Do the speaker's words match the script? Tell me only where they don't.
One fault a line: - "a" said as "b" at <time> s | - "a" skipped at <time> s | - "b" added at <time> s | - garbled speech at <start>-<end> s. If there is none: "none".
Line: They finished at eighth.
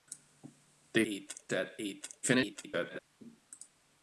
- "finished" said as "eighth" at 1.1 s
- garbled speech at 2.2-3.0 s